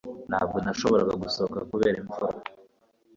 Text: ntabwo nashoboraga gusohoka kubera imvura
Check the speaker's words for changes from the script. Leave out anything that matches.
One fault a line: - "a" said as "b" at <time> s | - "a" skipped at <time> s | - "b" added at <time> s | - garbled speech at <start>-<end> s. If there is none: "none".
none